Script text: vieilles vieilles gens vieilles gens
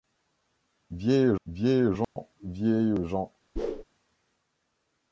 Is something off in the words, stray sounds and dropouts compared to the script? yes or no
yes